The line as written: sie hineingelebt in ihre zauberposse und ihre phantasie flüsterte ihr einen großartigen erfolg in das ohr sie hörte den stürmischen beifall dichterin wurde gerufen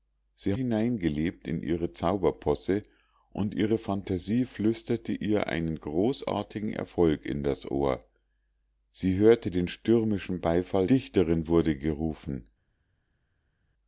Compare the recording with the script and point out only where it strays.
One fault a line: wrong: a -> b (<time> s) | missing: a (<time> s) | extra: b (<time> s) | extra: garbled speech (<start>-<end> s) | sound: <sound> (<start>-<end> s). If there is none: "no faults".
no faults